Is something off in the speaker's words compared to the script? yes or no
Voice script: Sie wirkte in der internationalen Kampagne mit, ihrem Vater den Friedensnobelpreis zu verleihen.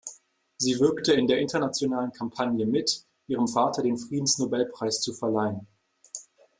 no